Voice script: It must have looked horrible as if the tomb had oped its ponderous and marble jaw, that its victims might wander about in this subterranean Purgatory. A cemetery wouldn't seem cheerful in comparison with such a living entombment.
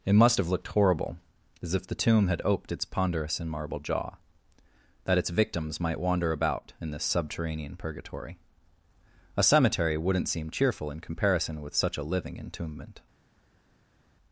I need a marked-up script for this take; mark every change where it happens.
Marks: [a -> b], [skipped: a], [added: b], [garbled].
It must have looked horrible as if the tomb had oped its ponderous and marble jaw, that its victims might wander about in this subterranean Purgatory. A cemetery wouldn't seem cheerful in comparison with such a living entombment.